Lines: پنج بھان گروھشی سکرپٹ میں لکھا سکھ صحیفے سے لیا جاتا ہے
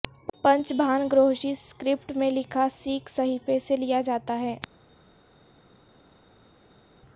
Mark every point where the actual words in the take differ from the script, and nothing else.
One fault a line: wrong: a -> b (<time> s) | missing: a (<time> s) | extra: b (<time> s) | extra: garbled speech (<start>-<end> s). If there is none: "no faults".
no faults